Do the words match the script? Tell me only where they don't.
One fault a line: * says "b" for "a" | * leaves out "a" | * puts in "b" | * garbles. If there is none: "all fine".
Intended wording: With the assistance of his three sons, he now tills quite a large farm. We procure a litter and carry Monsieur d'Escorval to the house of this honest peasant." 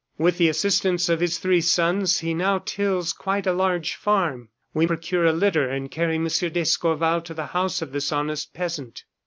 all fine